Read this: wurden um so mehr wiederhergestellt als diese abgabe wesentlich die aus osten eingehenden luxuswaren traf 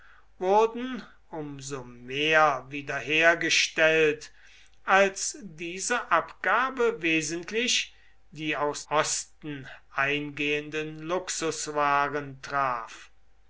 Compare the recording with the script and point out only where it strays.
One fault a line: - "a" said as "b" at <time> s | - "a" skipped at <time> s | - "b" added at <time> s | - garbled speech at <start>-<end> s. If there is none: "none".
none